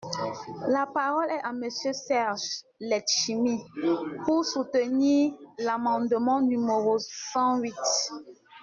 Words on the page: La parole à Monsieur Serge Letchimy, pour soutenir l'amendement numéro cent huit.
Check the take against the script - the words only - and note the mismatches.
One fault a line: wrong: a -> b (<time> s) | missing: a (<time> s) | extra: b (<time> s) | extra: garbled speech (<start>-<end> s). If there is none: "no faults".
extra: est (1.3 s)